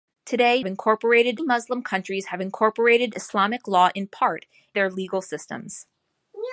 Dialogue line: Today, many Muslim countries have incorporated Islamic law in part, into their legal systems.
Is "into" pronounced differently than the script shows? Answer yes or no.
yes